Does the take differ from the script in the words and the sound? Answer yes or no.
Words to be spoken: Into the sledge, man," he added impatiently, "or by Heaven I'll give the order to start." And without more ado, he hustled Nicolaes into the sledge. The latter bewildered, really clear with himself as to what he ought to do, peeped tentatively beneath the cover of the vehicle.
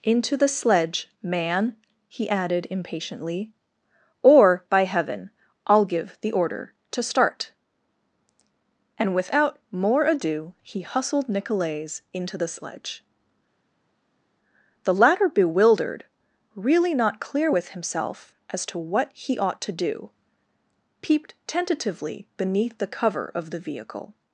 yes